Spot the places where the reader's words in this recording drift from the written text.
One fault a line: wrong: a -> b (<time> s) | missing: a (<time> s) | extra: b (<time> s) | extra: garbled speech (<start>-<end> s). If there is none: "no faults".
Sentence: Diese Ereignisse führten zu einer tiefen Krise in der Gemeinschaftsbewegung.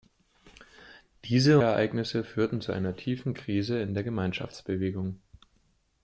no faults